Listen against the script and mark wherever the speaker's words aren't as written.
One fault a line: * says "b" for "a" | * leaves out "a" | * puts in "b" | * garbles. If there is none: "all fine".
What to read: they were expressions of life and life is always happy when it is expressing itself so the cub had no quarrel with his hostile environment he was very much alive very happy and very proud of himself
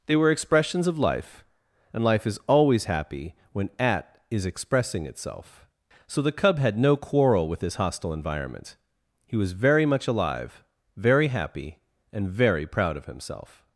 * says "at" for "it"